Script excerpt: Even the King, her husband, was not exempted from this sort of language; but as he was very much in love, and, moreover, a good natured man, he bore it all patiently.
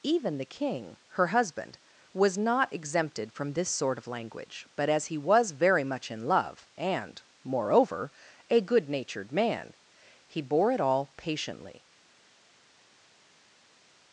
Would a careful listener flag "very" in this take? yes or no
no